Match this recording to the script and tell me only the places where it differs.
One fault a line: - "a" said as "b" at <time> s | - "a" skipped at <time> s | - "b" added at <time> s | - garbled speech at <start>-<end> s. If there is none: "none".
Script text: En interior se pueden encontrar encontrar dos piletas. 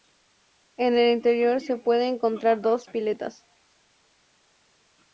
- "el" added at 1.0 s
- "encontrar" skipped at 2.6 s